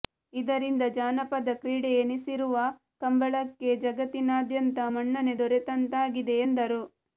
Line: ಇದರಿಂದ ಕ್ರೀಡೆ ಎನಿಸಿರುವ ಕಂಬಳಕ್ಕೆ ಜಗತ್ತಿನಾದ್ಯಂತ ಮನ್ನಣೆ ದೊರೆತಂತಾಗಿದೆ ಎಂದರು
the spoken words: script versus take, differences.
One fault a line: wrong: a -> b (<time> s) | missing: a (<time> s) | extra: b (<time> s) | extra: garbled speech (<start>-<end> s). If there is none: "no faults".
extra: ಜಾನಪದ (0.9 s)